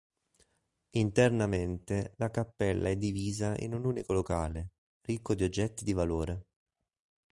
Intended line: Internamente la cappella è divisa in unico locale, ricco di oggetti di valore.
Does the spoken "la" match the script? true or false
true